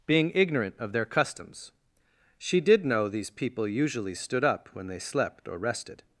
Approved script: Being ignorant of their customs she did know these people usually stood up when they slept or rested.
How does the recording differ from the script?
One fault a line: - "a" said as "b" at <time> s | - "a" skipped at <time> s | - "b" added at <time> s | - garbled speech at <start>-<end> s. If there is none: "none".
none